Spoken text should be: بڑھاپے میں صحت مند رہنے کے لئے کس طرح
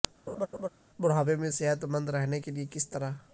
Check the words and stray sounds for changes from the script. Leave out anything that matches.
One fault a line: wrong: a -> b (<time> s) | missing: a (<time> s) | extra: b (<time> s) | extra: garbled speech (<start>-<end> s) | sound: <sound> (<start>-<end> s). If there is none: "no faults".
sound: laugh (0.3-0.7 s)